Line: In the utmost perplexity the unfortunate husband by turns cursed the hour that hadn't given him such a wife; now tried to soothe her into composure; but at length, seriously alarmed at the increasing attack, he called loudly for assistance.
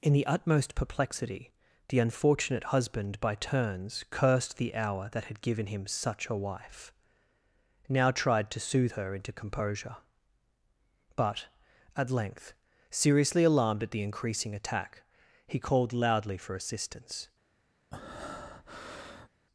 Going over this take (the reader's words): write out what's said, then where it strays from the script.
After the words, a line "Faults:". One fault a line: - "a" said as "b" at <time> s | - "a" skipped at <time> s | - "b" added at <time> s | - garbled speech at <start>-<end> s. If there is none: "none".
In the utmost perplexity the unfortunate husband by turns cursed the hour that had given him such a wife; now tried to soothe her into composure; but at length, seriously alarmed at the increasing attack, he called loudly for assistance.
Faults:
- "hadn't" said as "had" at 5.2 s